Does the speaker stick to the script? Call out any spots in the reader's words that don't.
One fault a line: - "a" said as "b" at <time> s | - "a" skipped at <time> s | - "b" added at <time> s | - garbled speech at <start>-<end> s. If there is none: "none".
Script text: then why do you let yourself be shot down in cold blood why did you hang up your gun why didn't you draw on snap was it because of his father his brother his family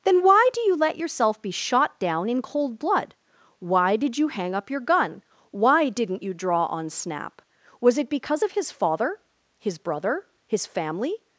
none